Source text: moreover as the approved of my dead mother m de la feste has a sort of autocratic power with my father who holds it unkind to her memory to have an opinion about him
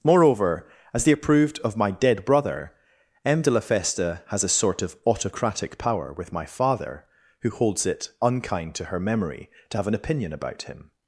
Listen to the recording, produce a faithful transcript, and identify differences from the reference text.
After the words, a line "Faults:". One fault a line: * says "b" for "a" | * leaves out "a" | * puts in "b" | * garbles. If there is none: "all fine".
moreover as the approved of my dead brother m de la feste has a sort of autocratic power with my father who holds it unkind to her memory to have an opinion about him
Faults:
* says "brother" for "mother"